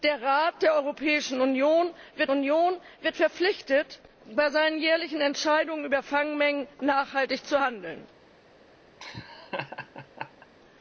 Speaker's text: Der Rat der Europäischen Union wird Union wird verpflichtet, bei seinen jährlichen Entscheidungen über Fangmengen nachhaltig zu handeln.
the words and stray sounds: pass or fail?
fail